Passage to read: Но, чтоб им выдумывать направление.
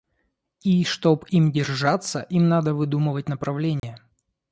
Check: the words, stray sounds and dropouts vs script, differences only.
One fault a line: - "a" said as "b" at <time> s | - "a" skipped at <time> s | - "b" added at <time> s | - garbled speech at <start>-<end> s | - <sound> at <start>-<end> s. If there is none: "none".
- "Но" said as "И" at 0.6 s
- "держаться им надо" added at 1.5 s
- dropout at 3.8-3.8 s